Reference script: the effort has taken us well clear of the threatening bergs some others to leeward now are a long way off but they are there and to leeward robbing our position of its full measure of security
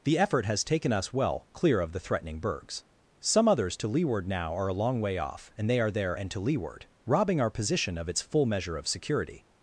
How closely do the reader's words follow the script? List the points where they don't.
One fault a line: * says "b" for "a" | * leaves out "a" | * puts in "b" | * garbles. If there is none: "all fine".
* says "and" for "but"